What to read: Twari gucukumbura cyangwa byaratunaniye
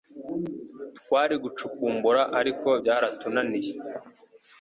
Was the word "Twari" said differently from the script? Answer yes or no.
no